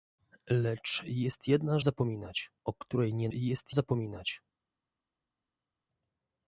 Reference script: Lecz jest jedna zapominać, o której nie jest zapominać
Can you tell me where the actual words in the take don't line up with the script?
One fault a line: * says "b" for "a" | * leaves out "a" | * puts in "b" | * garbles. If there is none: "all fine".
all fine